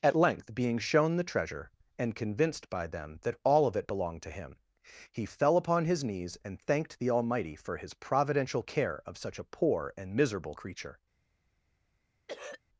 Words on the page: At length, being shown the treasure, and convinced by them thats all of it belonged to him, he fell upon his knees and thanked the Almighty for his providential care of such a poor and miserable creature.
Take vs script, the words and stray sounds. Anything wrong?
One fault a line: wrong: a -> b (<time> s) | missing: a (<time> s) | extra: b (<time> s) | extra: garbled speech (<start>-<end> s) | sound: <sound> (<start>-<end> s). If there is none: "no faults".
wrong: thats -> that (3.2 s)
sound: throat clearing (12.3-12.6 s)